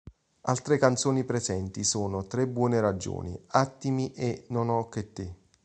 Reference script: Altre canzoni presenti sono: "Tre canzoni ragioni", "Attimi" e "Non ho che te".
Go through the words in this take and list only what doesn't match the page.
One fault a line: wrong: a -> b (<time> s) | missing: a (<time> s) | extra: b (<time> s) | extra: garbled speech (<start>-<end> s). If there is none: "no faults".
wrong: canzoni -> buone (2.5 s)